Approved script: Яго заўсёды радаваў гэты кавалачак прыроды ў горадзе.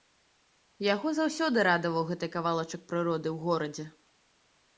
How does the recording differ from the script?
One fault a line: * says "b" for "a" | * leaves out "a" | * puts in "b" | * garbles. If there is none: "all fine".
all fine